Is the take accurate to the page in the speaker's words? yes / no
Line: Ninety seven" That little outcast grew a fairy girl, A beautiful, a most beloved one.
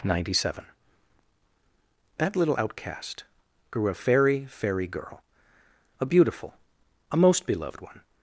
no